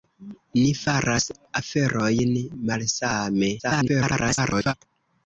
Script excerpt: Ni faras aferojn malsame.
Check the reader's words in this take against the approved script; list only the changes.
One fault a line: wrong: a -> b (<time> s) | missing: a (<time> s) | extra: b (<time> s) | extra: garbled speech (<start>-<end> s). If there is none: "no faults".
extra: garbled speech (3.6-4.7 s)